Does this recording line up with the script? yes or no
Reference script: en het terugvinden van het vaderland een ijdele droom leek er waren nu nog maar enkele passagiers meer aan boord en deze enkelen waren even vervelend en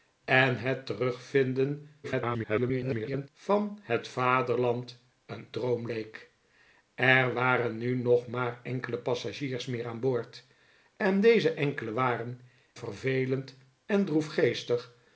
no